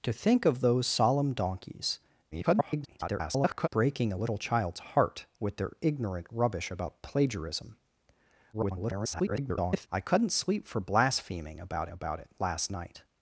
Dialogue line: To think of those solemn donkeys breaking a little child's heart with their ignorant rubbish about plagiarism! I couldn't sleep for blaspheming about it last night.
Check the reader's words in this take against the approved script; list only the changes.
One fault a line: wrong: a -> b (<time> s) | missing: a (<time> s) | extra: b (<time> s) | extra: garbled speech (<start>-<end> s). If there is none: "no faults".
extra: garbled speech (2.3-3.7 s)
extra: garbled speech (8.5-9.9 s)
extra: about (11.9 s)